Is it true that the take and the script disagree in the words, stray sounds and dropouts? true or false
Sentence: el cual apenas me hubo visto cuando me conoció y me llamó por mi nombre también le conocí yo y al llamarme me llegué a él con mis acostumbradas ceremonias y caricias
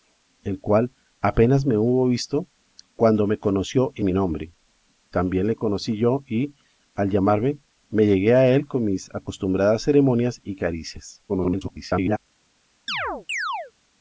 true